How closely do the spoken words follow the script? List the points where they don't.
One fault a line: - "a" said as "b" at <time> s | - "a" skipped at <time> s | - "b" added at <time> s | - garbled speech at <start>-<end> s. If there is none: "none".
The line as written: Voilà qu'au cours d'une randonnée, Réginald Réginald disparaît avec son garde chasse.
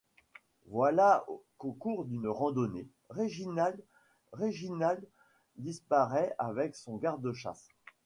none